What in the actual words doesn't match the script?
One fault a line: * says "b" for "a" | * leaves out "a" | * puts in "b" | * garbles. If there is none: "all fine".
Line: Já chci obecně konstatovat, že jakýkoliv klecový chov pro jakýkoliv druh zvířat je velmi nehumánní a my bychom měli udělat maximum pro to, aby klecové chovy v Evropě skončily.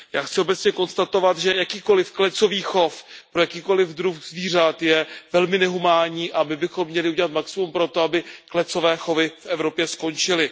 all fine